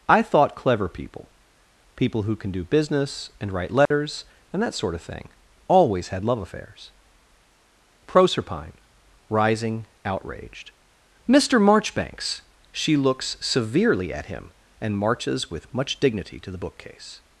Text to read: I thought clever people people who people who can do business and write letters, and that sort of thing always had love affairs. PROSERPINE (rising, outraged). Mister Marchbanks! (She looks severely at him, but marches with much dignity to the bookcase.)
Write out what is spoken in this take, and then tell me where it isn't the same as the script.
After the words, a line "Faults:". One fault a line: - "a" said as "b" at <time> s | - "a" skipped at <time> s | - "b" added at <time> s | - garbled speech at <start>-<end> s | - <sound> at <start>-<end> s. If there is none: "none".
I thought clever people people who can do business and write letters, and that sort of thing always had love affairs. PROSERPINE (rising, outraged). Mister Marchbanks! (She looks severely at him, and marches with much dignity to the bookcase.)
Faults:
- "people who" skipped at 2.4 s
- dropout at 3.9-3.9 s
- "but" said as "and" at 14.8 s